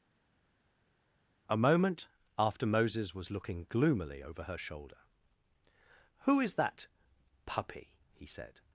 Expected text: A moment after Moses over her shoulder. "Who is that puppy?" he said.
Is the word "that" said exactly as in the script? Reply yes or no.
yes